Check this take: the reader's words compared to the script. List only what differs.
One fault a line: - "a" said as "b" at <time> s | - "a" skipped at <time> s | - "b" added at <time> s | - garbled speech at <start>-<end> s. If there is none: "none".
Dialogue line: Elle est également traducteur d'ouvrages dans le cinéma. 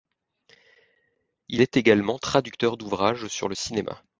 - "Elle" said as "Il" at 1.5 s
- "dans" said as "sur" at 3.3 s